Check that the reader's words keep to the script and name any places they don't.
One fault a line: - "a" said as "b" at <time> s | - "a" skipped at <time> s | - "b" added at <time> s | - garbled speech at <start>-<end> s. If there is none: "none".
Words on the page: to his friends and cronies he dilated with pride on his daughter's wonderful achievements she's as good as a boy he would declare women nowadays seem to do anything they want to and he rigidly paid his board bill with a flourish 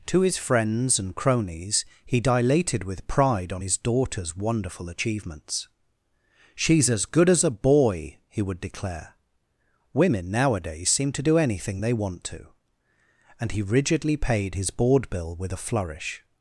none